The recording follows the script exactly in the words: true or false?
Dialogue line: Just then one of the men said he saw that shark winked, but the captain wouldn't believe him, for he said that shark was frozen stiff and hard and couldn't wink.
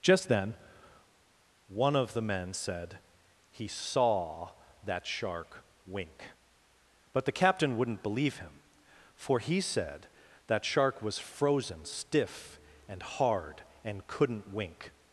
false